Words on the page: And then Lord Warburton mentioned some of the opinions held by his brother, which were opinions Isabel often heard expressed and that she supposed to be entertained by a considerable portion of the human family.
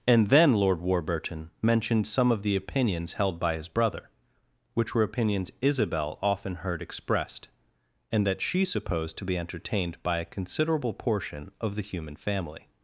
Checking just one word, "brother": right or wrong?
right